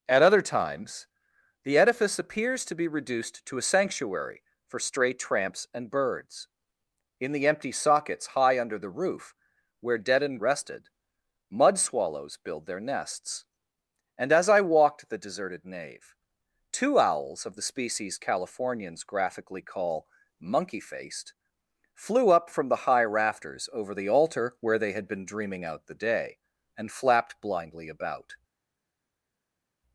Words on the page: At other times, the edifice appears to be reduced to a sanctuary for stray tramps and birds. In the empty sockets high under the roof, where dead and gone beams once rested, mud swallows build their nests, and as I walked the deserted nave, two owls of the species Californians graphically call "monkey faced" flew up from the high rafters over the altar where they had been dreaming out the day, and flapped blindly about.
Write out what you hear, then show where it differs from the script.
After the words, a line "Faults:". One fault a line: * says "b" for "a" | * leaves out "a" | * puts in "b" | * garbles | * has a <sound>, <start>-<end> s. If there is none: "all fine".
At other times, the edifice appears to be reduced to a sanctuary for stray tramps and birds. In the empty sockets high under the roof, where dead and rested, mud swallows build their nests, and as I walked the deserted nave, two owls of the species Californians graphically call "monkey faced" flew up from the high rafters over the altar where they had been dreaming out the day, and flapped blindly about.
Faults:
* leaves out "gone beams once"